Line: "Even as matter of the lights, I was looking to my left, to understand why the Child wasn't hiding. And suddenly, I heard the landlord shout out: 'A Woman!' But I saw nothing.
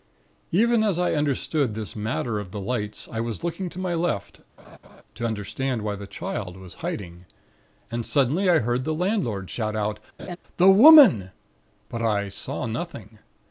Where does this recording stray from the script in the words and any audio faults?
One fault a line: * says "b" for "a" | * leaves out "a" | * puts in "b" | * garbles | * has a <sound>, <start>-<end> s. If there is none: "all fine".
* puts in "I understood this"
* has a laugh, 4.6-5.0 s
* says "was" for "wasn't"
* has a laugh, 10.2-10.4 s
* says "The" for "A"